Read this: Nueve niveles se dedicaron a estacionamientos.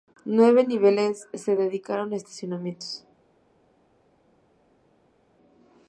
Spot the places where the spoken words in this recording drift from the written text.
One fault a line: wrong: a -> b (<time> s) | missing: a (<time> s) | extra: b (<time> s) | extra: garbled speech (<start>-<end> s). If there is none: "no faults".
no faults